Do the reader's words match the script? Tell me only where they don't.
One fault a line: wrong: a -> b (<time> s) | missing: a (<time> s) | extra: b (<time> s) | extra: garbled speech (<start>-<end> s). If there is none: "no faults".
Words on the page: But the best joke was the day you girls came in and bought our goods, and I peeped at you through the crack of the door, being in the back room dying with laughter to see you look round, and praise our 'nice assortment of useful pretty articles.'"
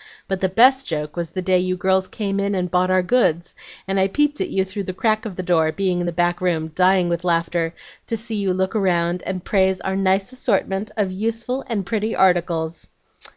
extra: and (11.7 s)